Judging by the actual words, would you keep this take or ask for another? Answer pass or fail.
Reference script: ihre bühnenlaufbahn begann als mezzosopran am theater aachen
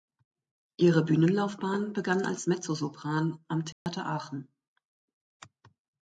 pass